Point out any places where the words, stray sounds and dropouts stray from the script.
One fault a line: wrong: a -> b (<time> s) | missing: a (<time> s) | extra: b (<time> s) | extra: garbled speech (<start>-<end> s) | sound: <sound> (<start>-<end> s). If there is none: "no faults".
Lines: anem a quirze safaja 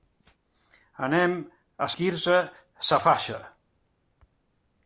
no faults